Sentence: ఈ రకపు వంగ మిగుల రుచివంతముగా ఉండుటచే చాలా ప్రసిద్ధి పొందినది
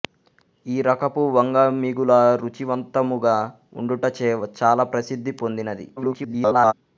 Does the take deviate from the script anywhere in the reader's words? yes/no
yes